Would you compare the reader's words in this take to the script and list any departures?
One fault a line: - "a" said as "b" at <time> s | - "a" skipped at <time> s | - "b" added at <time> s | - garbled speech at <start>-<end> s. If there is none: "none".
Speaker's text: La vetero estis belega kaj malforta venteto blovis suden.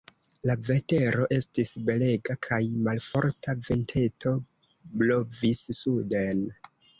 none